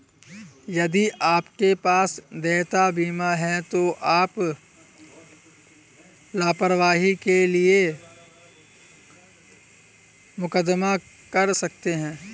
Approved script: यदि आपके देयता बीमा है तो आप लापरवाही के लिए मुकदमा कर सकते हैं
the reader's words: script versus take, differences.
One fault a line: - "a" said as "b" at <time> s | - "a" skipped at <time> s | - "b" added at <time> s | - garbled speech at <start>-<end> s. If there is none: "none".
- "पास" added at 1.8 s